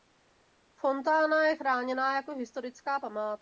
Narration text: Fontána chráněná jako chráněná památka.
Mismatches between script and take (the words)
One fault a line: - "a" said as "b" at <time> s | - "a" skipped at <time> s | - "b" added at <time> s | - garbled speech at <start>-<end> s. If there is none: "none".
- "je" added at 1.4 s
- "chráněná" said as "historická" at 2.3 s